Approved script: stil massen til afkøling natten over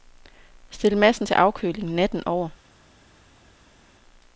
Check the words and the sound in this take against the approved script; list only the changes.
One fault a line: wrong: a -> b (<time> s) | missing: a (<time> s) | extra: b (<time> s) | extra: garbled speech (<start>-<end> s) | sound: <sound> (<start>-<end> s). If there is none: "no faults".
no faults